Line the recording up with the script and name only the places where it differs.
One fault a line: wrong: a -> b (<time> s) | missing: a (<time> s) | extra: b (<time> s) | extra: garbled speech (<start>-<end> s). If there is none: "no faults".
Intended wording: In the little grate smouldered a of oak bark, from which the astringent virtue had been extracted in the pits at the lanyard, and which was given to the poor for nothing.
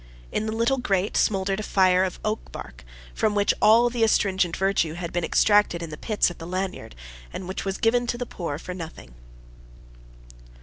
extra: fire (1.6 s)
extra: all (3.6 s)